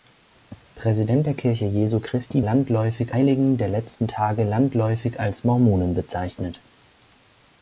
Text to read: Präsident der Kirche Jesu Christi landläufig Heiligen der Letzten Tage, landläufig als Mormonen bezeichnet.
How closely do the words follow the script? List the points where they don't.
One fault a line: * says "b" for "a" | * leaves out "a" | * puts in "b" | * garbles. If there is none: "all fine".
all fine